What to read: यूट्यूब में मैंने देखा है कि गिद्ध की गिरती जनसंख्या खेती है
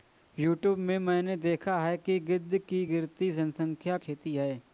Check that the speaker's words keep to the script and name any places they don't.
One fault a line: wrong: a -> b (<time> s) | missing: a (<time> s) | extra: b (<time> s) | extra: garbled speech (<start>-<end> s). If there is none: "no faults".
no faults